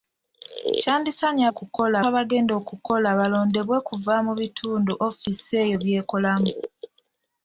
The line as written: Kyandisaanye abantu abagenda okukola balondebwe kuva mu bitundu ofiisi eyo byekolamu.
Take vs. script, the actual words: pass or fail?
fail